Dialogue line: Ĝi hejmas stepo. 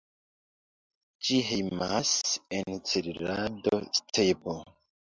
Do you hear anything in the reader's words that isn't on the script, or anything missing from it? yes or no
yes